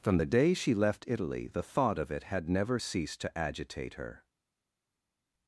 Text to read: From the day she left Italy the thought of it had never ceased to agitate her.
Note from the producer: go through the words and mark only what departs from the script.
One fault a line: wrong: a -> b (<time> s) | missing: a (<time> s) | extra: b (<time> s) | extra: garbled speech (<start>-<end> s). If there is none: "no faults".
no faults